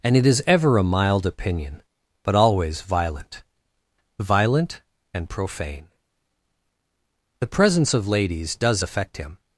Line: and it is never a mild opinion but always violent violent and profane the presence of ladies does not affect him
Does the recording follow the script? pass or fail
fail